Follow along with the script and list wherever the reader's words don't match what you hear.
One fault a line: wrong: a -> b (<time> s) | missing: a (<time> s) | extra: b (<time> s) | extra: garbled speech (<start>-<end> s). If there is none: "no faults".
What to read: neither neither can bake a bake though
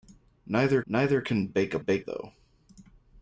no faults